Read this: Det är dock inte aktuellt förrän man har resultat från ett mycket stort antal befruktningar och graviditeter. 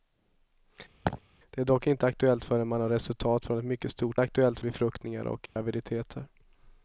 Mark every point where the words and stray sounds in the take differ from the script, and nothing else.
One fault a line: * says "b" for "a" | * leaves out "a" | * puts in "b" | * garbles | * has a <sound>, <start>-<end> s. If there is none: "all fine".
* has a laugh, 1.0-1.2 s
* says "aktuellt" for "antal"
* has a dropout, 5.5-5.6 s